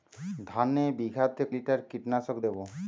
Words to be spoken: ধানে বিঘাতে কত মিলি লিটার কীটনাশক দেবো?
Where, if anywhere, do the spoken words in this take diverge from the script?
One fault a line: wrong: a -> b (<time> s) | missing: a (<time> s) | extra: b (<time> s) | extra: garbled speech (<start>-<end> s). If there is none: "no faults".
missing: কত মিলি (1.4 s)